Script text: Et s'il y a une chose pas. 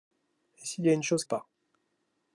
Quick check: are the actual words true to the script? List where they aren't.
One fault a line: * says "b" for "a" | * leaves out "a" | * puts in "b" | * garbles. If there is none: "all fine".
all fine